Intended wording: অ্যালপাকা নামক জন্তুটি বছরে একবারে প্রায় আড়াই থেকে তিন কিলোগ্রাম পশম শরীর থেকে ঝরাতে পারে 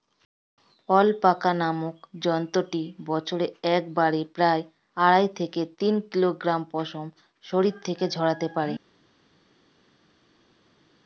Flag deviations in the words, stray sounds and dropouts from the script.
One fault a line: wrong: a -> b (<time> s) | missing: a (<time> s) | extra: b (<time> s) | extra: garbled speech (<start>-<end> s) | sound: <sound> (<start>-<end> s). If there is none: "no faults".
no faults